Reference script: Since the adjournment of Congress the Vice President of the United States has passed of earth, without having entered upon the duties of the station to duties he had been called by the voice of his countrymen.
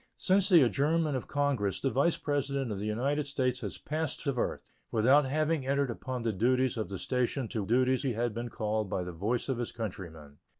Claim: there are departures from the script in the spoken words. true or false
false